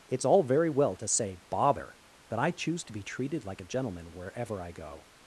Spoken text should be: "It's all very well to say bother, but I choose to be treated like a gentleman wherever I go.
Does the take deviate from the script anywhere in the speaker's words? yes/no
no